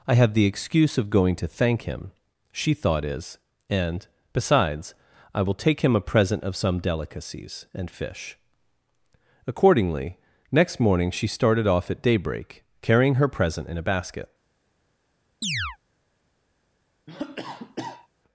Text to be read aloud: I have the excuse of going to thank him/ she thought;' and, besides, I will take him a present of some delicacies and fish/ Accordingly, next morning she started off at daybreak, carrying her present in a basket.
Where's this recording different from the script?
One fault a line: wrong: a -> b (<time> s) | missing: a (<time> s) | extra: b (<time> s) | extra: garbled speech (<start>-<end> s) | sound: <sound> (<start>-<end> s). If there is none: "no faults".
extra: is (3.0 s)
sound: chirp (15.4-15.8 s)
sound: cough (17.1-18.1 s)